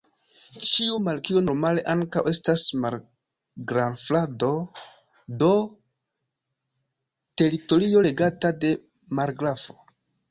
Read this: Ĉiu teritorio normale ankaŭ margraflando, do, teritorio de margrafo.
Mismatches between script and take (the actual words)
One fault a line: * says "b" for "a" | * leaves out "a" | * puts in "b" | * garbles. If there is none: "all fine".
* says "markio" for "teritorio"
* puts in "estas"
* puts in "regata"